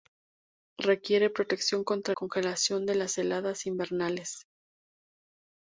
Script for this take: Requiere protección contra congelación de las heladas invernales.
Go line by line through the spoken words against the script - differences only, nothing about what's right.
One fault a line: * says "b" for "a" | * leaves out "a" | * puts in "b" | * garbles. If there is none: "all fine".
all fine